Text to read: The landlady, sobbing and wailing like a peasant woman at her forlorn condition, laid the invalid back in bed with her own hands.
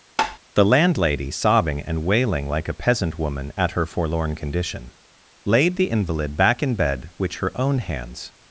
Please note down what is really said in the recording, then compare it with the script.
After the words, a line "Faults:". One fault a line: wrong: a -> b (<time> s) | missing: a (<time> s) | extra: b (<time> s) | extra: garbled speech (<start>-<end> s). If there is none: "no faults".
The landlady, sobbing and wailing like a peasant woman at her forlorn condition, laid the invalid back in bed which her own hands.
Faults:
wrong: with -> which (7.2 s)